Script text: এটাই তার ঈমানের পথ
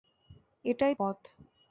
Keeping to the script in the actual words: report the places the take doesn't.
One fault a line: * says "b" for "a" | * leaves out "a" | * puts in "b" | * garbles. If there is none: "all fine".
* leaves out "তার ঈমানের"